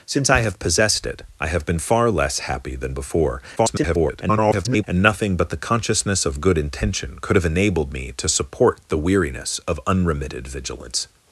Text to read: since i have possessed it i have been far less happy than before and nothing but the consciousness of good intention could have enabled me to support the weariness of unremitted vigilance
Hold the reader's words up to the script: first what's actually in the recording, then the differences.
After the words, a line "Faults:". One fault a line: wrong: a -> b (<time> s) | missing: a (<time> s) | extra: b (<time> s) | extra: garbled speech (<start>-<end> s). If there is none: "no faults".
since i have possessed it i have been far less happy than before [garbled] and nothing but the consciousness of good intention could have enabled me to support the weariness of unremitted vigilance
Faults:
extra: garbled speech (3.6-4.8 s)